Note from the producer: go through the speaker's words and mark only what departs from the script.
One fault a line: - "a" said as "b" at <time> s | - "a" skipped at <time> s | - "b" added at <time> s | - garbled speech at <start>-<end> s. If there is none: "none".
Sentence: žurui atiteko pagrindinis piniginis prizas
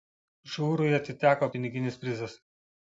- "pagrindinis" skipped at 1.5 s